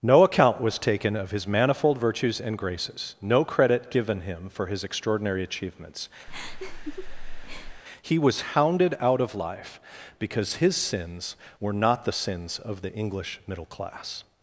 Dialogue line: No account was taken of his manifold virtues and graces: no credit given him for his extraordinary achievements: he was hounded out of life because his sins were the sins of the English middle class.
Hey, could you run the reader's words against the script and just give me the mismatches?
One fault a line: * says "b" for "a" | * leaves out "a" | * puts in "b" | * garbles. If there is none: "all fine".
* puts in "not"